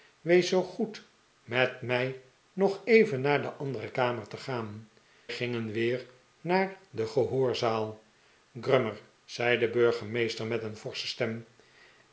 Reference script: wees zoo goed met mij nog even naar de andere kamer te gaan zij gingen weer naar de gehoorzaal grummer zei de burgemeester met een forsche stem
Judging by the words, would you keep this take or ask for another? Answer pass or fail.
fail